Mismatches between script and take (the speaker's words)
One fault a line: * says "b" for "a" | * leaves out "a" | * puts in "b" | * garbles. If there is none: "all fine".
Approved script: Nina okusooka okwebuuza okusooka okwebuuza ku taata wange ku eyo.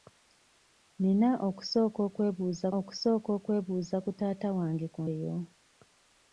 all fine